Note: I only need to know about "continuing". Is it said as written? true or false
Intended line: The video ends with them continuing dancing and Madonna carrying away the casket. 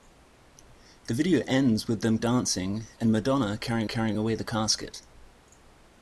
false